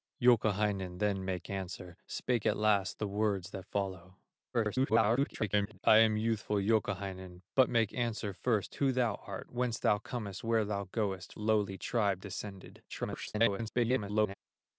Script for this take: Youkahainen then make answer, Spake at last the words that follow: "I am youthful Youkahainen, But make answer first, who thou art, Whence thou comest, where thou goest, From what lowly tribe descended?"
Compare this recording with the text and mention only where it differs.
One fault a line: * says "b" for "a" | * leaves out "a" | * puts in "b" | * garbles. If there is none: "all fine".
* garbles
* leaves out "From what"
* garbles